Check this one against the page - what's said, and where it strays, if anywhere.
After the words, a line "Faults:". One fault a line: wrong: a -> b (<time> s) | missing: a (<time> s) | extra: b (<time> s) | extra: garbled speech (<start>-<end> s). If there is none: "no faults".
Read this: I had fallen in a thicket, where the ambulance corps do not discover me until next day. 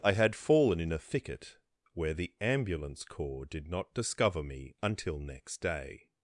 I had fallen in a thicket, where the ambulance corps did not discover me until next day.
Faults:
wrong: do -> did (3.5 s)